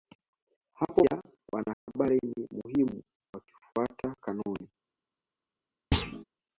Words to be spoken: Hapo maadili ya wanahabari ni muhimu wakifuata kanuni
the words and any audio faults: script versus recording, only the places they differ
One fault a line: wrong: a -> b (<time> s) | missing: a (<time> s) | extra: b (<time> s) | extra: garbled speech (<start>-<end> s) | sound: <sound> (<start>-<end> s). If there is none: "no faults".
missing: maadili (1.1 s)
sound: dropout (1.7-1.9 s)
sound: thud (5.9-6.2 s)